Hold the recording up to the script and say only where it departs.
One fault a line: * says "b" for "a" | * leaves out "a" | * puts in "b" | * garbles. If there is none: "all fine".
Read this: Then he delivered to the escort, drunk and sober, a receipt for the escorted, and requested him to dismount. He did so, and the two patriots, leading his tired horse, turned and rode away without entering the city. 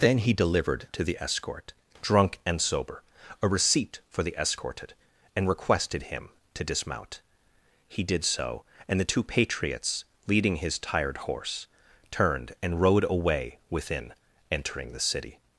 * says "within" for "without"